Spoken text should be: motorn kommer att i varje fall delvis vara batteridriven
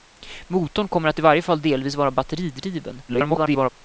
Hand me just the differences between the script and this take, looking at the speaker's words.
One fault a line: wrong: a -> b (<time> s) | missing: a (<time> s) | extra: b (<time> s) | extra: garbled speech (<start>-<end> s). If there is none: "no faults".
extra: garbled speech (3.1-3.7 s)